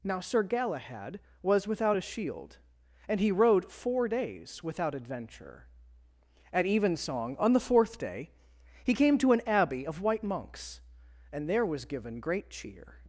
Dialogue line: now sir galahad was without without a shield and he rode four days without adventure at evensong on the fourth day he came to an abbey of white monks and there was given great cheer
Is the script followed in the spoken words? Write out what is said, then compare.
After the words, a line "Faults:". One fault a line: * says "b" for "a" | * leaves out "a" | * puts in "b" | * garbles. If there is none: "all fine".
now sir galahad was without a shield and he rode four days without adventure at evensong on the fourth day he came to an abbey of white monks and there was given great cheer
Faults:
* leaves out "without"